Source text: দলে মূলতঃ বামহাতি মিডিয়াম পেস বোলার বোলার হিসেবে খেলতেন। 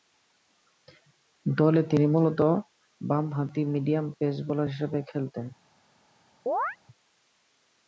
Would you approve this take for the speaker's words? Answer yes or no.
no